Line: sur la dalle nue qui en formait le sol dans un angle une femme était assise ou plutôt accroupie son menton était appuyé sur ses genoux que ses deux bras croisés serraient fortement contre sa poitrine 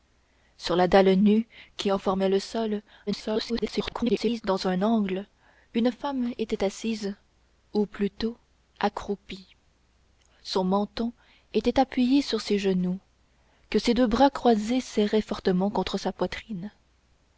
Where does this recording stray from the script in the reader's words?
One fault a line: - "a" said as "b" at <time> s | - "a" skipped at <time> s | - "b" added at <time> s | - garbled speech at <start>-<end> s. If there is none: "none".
- garbled speech at 3.1-4.4 s